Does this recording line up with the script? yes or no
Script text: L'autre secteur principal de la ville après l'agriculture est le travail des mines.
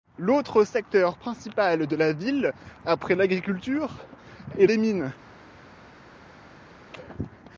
no